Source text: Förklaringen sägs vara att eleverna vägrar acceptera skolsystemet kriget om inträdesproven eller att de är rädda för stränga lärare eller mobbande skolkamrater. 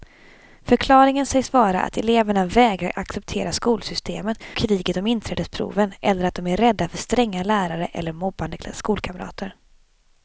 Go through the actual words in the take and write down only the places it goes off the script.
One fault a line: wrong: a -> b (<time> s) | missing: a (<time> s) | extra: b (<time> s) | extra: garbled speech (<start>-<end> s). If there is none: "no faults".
no faults